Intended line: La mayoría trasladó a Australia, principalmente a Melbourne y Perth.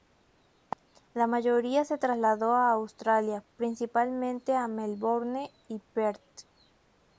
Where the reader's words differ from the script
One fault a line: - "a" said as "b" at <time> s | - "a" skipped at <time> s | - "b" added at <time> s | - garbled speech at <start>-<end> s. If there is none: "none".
- "se" added at 1.9 s